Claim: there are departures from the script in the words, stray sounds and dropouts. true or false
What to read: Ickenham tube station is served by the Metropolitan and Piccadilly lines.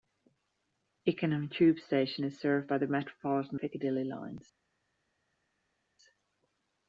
true